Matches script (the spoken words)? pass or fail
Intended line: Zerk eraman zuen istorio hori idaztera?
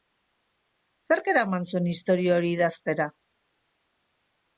pass